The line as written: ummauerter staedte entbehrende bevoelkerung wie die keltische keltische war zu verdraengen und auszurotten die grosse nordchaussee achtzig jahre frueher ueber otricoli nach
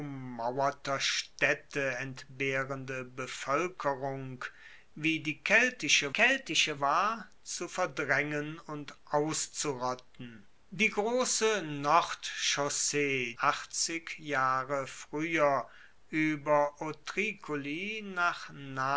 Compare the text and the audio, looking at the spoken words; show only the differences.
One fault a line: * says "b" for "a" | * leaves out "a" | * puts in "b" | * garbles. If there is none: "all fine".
all fine